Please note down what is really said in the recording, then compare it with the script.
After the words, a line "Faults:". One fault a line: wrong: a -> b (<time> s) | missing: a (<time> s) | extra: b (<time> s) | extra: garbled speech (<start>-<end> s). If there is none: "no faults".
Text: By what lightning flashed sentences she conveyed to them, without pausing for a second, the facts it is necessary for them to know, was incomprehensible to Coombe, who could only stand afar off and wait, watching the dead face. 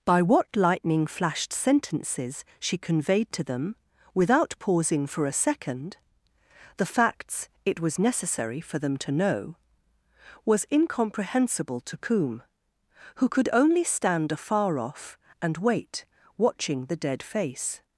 By what lightning flashed sentences she conveyed to them, without pausing for a second, the facts it was necessary for them to know, was incomprehensible to Coombe, who could only stand afar off and wait, watching the dead face.
Faults:
wrong: is -> was (7.8 s)